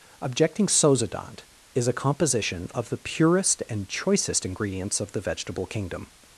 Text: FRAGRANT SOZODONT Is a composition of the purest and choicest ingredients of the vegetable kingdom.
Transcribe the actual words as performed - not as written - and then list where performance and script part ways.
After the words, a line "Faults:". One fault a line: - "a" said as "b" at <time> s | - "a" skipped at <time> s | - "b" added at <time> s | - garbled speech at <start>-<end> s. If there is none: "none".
Objecting SOZODONT Is a composition of the purest and choicest ingredients of the vegetable kingdom.
Faults:
- "FRAGRANT" said as "Objecting" at 0.2 s